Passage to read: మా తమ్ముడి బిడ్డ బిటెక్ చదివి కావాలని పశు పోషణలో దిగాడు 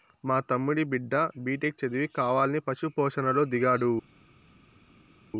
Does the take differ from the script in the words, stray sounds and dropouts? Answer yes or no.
no